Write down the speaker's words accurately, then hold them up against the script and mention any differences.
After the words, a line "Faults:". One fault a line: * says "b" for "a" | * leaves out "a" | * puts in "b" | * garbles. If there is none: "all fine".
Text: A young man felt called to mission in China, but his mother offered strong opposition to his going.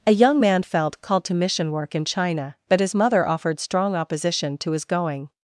A young man felt called to mission work in China, but his mother offered strong opposition to his going.
Faults:
* puts in "work"